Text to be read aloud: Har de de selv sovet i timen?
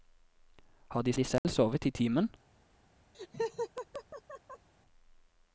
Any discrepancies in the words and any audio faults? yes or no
yes